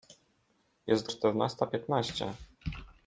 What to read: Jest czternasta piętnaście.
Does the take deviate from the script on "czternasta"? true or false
false